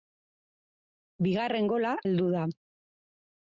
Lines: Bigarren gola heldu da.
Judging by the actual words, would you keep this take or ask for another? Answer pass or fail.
pass